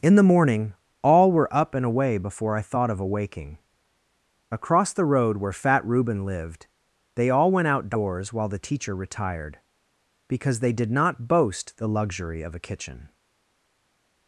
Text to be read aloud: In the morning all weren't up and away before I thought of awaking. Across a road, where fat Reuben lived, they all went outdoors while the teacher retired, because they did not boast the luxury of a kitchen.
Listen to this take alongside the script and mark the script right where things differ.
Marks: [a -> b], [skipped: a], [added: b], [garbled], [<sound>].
In the morning all [weren't -> were] up and away before I thought of awaking. Across [a -> the] road, where fat Reuben lived, they all went outdoors while the teacher retired, because they did not boast the luxury of a kitchen.